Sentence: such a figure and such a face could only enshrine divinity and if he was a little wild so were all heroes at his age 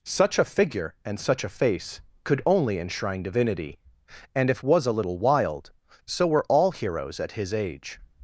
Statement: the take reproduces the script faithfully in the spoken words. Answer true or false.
false